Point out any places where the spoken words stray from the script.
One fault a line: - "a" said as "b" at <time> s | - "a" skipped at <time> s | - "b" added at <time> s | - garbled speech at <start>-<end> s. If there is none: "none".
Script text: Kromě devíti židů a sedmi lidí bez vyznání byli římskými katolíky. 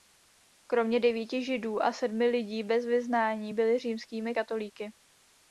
none